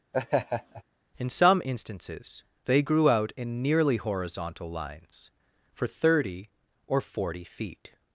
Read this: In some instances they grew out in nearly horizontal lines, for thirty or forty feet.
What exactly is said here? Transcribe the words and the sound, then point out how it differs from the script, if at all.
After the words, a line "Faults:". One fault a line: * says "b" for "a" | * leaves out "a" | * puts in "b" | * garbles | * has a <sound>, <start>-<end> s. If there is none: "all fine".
In some instances they grew out in nearly horizontal lines, for thirty or forty feet.
Faults:
* has a laugh, 0.1-0.8 s